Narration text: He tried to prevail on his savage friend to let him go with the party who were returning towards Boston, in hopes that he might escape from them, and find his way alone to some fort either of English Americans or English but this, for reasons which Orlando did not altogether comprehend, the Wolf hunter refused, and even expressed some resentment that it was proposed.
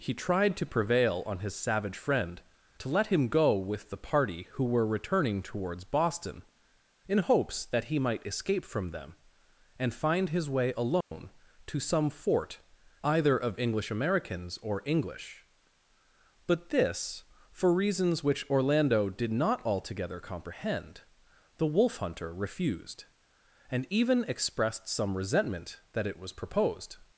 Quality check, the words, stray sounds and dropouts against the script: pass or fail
fail